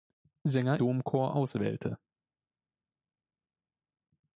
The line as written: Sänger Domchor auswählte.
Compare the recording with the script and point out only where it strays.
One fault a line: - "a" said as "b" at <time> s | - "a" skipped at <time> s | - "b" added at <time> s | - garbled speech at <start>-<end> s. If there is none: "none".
none